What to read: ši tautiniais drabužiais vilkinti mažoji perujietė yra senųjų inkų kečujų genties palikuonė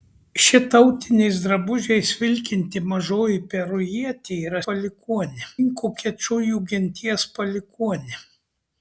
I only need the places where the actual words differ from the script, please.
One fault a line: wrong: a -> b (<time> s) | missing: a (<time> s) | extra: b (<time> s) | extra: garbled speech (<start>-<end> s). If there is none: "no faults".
wrong: senųjų -> palikuonė (4.7 s)